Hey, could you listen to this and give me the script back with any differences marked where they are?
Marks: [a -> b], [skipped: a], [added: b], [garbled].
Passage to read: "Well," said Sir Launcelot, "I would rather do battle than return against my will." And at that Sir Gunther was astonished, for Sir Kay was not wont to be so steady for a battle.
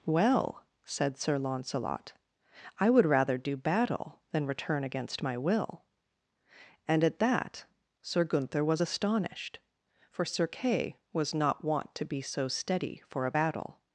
"Well," said Sir Launcelot, "I would rather do battle than return against my will." And at that Sir Gunther was astonished, for Sir Kay was not wont to be so steady for a battle.